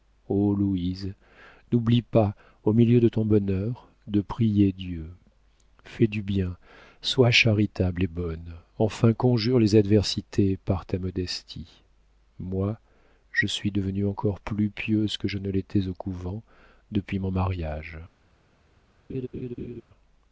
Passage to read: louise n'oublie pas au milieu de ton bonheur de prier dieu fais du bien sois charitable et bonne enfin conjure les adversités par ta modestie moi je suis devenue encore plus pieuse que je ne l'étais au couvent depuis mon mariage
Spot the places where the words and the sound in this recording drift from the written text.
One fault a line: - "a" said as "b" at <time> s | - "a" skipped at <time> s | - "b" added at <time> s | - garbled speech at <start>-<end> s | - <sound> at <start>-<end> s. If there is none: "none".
- laugh at 19.1-19.8 s